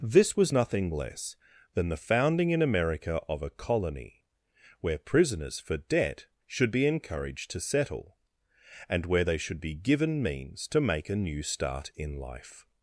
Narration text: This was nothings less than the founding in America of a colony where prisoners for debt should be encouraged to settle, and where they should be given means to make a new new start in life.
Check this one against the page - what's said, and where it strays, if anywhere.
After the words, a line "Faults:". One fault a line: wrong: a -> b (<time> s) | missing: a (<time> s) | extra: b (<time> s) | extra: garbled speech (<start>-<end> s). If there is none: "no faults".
This was nothing less than the founding in America of a colony where prisoners for debt should be encouraged to settle, and where they should be given means to make a new start in life.
Faults:
wrong: nothings -> nothing (0.5 s)
missing: new (11.4 s)